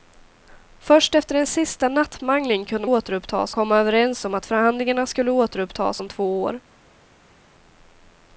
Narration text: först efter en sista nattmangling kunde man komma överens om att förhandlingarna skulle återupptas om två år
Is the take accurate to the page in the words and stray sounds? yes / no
no